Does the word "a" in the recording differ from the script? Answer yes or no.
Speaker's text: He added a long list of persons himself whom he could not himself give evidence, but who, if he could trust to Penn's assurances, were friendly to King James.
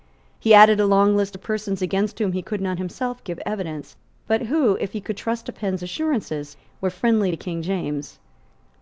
no